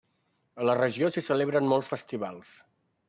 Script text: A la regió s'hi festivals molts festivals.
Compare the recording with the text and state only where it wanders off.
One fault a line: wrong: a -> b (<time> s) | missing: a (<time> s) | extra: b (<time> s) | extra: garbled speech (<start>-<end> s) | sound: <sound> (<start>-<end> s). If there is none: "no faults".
wrong: festivals -> celebren (1.3 s)